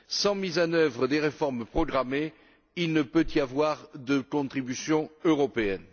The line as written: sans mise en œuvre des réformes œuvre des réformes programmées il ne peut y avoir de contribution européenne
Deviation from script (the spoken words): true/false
true